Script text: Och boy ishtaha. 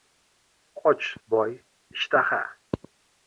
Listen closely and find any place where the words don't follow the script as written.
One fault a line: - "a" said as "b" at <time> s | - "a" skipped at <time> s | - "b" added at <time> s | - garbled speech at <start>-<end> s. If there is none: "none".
none